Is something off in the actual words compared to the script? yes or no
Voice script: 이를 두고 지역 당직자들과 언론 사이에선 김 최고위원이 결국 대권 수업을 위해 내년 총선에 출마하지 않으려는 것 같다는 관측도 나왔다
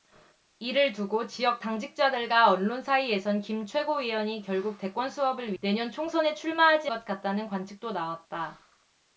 yes